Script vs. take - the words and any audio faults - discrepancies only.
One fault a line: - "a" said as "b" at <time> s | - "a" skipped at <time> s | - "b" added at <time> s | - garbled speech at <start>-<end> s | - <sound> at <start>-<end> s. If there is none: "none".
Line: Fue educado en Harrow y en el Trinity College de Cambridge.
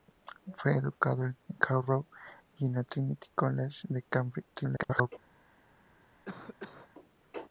- garbled speech at 4.5-5.1 s
- cough at 6.2-6.9 s